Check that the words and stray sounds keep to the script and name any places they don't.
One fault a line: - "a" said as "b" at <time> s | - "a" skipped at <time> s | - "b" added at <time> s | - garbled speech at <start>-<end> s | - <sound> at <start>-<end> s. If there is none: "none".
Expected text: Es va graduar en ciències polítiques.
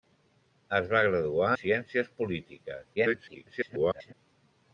- "en" skipped at 1.5 s
- garbled speech at 3.0-4.1 s